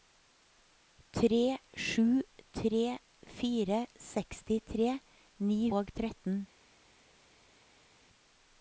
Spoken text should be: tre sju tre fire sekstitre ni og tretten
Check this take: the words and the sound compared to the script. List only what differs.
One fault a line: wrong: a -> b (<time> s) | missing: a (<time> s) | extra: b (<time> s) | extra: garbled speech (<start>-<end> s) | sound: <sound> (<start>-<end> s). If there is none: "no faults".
no faults